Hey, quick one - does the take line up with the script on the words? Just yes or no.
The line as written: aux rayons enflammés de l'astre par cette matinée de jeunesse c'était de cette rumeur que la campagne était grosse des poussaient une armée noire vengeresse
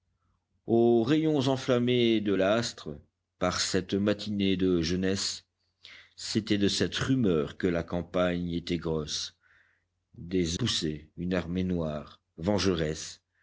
yes